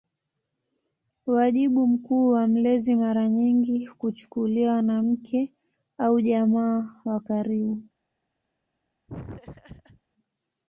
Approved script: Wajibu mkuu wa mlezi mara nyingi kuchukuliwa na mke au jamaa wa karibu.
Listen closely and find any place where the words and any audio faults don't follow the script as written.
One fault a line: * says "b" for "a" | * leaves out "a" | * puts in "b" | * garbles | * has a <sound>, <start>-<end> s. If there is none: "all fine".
* has a laugh, 9.1-10.0 s